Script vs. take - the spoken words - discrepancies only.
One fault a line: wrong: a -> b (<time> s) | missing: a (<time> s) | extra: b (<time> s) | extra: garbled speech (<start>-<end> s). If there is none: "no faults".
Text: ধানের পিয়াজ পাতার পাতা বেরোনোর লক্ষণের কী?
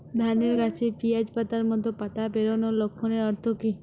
extra: গাছে (0.6 s)
extra: মতো (1.7 s)
extra: অর্থ (3.3 s)